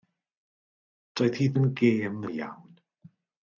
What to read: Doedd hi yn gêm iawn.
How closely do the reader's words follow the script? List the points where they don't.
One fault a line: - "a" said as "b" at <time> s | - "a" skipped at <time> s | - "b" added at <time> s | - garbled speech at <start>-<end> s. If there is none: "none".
none